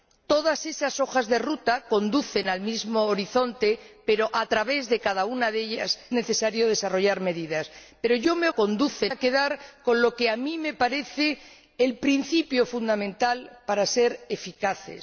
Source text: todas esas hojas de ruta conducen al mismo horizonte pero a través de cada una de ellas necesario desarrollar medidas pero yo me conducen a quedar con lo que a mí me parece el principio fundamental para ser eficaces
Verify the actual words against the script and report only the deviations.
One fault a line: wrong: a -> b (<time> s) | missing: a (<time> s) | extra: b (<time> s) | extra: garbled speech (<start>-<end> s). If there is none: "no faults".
no faults